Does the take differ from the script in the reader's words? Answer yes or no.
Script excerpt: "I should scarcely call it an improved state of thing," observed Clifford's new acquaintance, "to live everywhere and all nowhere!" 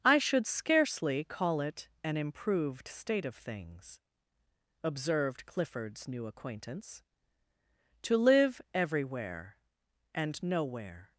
yes